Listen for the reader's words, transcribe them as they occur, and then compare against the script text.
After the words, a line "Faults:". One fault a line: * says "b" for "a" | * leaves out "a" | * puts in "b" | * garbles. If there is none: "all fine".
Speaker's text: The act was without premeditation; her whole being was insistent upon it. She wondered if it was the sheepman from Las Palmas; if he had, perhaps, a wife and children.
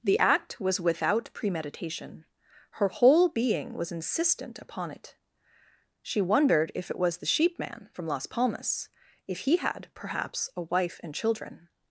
The act was without premeditation; her whole being was insistent upon it. She wondered if it was the sheepman from Las Palmas; if he had, perhaps, a wife and children.
Faults:
all fine